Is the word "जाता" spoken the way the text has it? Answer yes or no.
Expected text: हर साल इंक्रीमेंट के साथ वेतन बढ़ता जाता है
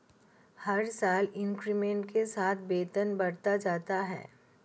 yes